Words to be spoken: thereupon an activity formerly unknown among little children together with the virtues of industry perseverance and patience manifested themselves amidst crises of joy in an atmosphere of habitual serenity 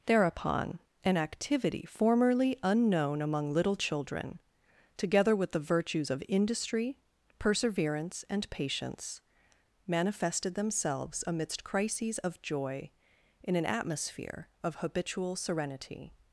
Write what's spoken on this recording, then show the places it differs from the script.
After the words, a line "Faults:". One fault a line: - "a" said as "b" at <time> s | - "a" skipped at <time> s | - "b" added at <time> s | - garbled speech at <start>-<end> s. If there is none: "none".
thereupon an activity formerly unknown among little children together with the virtues of industry perseverance and patience manifested themselves amidst crises of joy in an atmosphere of habitual serenity
Faults:
none